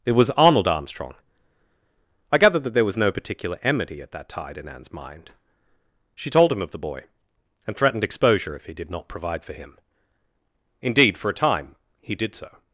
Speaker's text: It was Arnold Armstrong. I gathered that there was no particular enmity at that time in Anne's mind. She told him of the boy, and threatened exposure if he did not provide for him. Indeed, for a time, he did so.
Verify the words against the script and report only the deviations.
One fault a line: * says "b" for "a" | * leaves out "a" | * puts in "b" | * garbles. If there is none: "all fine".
* says "tide" for "time"